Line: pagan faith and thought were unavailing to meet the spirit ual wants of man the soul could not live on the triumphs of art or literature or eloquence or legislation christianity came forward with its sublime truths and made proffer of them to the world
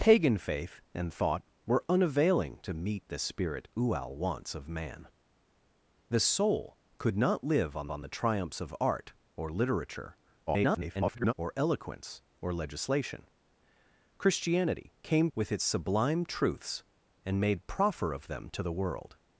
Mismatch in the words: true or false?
true